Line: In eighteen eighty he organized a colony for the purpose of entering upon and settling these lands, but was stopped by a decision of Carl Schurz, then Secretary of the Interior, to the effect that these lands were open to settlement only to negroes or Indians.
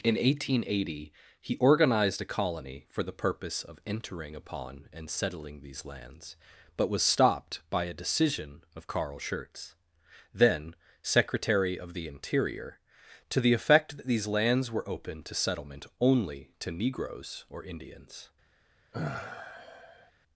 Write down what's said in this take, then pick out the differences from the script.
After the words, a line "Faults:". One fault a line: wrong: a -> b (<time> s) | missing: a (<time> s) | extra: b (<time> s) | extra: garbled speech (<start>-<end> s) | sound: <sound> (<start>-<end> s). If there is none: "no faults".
In eighteen eighty he organized a colony for the purpose of entering upon and settling these lands, but was stopped by a decision of Carl Schurz, then Secretary of the Interior, to the effect that these lands were open to settlement only to negroes or Indians.
Faults:
sound: sigh (18.9-20.1 s)